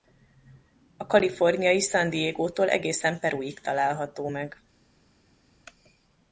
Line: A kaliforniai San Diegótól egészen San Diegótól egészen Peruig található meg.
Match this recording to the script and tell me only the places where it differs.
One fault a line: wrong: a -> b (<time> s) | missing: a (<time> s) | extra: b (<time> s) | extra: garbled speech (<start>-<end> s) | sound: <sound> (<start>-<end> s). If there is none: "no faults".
missing: San Diegótól egészen (3.2 s)